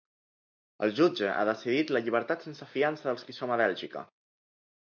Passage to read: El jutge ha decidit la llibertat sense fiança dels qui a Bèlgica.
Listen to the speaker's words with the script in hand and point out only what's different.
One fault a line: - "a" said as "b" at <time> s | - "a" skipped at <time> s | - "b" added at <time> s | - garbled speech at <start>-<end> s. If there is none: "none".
- "som" added at 3.4 s